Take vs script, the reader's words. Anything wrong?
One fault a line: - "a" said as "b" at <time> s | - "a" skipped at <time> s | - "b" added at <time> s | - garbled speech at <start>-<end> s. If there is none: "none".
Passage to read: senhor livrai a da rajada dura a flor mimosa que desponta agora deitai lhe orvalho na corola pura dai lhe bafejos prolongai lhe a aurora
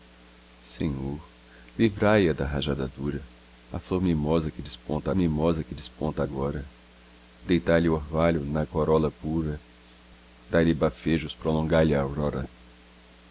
- "mimosa que desponta" added at 5.1 s